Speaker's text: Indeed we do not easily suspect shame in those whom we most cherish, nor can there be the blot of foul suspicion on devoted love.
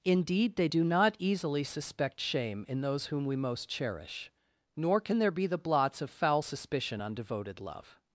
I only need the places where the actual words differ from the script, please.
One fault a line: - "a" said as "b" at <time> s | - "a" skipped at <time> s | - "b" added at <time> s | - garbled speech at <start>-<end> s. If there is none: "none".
- "we" said as "they" at 0.6 s
- "blot" said as "blots" at 5.6 s